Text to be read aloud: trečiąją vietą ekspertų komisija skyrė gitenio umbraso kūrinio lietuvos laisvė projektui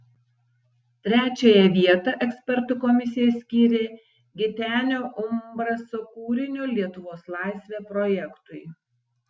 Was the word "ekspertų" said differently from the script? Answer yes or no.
no